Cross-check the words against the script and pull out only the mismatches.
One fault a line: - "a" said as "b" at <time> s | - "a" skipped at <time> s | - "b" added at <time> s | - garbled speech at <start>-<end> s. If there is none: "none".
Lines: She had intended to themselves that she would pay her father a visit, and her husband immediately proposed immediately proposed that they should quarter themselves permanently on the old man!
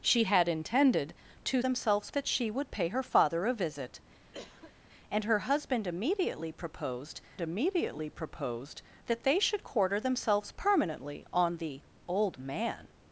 none